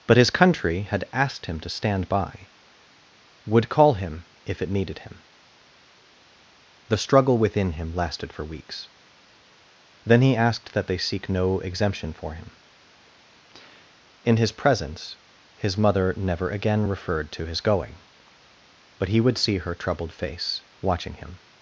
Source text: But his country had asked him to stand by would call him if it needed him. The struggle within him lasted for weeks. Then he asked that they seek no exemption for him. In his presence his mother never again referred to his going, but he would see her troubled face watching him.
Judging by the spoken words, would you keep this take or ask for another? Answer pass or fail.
pass